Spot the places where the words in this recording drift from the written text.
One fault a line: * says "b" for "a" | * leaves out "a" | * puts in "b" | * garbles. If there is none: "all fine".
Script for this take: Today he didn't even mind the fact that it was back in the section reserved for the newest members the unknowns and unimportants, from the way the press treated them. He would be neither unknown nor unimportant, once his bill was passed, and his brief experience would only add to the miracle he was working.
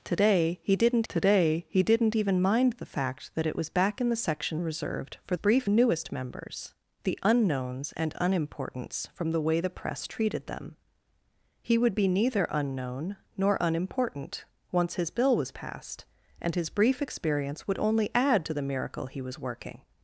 * puts in "today he didn't"
* says "brief" for "the"